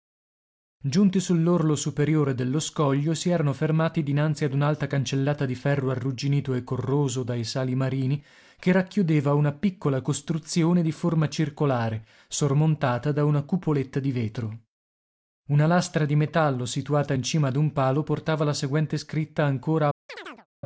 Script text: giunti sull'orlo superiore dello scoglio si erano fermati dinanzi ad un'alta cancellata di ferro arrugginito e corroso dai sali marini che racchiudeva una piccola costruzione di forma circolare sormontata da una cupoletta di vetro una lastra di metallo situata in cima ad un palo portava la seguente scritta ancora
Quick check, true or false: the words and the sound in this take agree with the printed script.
false